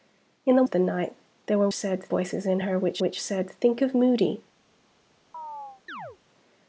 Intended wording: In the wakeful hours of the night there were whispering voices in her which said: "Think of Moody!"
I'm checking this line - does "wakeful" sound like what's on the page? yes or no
no